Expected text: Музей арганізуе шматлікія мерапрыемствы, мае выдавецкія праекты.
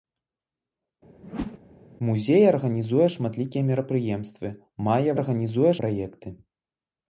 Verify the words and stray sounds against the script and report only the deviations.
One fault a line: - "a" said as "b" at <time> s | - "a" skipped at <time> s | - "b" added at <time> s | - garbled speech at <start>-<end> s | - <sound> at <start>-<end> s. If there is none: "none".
- whoosh at 1.2-1.6 s
- "выдавецкія" said as "арганізуе" at 5.2 s